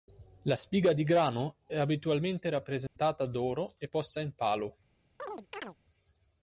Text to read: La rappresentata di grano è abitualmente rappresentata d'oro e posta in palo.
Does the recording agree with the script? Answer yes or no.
no